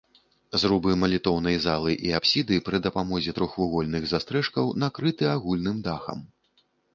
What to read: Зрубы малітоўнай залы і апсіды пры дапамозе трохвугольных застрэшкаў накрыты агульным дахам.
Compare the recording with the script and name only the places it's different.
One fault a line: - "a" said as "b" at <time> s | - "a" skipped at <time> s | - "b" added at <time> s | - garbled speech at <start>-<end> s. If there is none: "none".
none